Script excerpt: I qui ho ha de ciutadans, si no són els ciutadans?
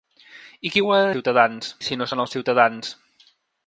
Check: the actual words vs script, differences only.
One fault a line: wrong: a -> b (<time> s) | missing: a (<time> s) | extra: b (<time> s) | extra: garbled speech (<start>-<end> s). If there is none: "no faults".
no faults